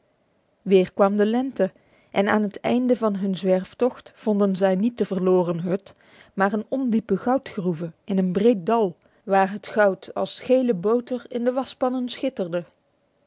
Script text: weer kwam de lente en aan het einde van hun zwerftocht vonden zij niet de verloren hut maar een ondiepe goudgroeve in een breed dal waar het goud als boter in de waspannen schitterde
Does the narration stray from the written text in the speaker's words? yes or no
yes